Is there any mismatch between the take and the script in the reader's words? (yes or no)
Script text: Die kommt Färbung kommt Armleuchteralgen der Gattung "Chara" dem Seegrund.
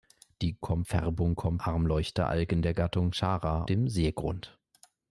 no